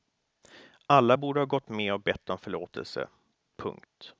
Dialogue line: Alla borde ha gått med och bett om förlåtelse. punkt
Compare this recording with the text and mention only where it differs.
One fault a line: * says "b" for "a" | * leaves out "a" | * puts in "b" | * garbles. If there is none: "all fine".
all fine